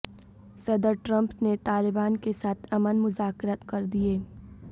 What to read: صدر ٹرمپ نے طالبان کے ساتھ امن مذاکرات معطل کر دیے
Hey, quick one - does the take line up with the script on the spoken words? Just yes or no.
no